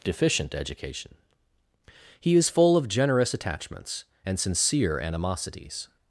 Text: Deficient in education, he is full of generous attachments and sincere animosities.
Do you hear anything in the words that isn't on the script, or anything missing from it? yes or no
yes